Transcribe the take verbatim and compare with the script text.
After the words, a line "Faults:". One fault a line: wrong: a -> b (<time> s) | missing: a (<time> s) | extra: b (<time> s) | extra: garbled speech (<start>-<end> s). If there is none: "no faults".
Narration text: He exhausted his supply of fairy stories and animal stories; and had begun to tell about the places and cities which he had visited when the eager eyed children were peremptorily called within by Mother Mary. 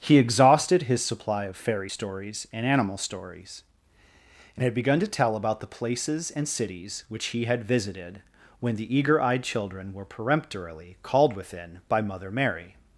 He exhausted his supply of fairy stories and animal stories; and had begun to tell about the places and cities which he had visited when the eager eyed children were peremptorily called within by Mother Mary.
Faults:
no faults